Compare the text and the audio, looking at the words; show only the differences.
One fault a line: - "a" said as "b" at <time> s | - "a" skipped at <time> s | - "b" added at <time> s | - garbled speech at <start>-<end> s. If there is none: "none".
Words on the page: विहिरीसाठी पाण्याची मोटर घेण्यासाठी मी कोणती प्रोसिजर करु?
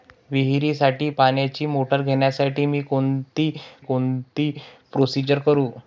- "कोणती" added at 3.8 s